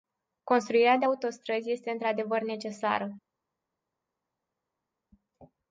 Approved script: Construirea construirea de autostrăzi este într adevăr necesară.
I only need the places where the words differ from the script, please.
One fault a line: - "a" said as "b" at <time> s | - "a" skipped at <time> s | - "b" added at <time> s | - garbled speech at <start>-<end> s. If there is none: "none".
- "construirea" skipped at 1.0 s